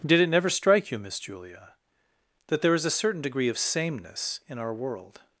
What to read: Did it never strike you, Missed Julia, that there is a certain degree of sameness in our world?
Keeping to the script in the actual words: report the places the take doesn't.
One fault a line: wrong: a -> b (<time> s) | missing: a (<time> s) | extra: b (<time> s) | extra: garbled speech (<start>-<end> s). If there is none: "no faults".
wrong: Missed -> Miss (1.0 s)